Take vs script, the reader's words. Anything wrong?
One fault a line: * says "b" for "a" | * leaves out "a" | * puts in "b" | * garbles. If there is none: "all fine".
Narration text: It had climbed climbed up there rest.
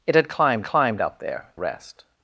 all fine